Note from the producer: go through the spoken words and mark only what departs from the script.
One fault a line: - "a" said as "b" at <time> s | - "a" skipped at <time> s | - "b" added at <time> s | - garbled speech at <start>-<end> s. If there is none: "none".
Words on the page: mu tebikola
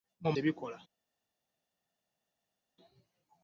none